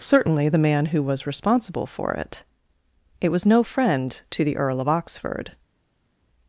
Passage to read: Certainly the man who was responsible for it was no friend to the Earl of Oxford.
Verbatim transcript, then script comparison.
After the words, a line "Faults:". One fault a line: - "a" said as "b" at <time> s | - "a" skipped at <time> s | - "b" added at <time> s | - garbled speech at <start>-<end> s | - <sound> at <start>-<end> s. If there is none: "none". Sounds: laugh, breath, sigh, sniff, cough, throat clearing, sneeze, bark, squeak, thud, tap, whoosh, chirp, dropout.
Certainly the man who was responsible for it it was no friend to the Earl of Oxford.
Faults:
- "it" added at 3.2 s